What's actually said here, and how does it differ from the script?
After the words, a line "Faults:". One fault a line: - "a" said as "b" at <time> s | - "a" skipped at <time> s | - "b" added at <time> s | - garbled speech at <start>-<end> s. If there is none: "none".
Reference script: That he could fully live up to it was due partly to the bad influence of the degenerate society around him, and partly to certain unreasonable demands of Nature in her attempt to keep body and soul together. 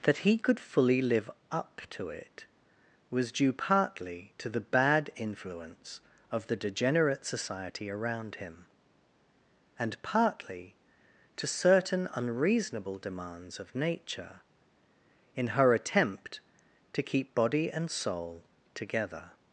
That he could fully live up to it was due partly to the bad influence of the degenerate society around him, and partly to certain unreasonable demands of Nature in her attempt to keep body and soul together.
Faults:
none